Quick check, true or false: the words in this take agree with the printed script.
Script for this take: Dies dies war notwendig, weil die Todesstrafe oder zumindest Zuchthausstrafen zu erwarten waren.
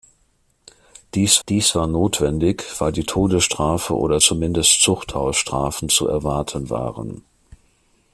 true